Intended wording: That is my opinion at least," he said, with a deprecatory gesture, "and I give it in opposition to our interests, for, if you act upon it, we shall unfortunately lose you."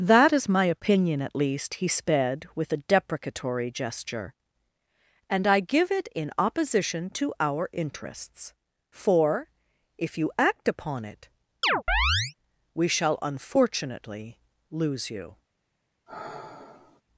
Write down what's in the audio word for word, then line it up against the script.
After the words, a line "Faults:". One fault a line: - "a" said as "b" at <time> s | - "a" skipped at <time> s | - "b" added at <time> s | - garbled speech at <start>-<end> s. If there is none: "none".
That is my opinion at least," he sped, with a deprecatory gesture, "and I give it in opposition to our interests, for, if you act upon it, we shall unfortunately lose you."
Faults:
- "said" said as "sped" at 1.9 s